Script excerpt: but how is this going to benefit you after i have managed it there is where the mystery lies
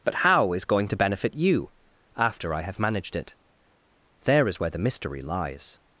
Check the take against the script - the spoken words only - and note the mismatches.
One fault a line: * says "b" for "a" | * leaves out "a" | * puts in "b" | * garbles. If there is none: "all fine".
* leaves out "this"